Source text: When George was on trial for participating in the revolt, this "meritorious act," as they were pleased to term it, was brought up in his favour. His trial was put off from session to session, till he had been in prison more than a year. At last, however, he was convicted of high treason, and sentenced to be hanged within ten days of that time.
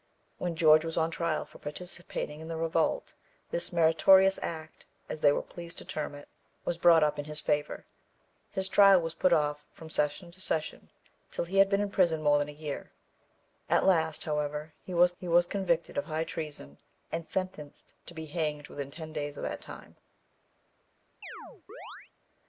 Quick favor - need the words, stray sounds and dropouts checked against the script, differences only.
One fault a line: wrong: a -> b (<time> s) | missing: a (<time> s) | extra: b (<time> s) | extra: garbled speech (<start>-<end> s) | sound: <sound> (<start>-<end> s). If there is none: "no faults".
extra: he was (15.2 s)
sound: chirp (21.2-22.1 s)